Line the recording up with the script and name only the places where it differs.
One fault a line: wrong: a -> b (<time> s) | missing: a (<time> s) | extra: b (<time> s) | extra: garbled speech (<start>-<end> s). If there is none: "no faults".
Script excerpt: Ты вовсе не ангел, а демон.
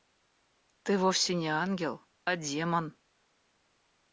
no faults